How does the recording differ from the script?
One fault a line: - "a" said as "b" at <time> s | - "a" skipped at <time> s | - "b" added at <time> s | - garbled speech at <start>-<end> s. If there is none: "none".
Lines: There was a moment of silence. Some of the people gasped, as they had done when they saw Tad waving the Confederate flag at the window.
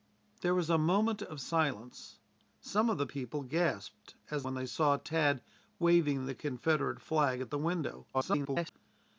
- "they had done" skipped at 4.5 s
- garbled speech at 8.1-8.7 s